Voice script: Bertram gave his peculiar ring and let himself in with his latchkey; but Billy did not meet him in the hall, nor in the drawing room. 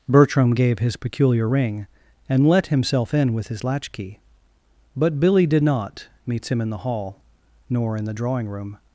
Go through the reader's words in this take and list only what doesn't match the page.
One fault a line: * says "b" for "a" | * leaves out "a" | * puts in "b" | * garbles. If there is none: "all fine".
* says "meets" for "meet"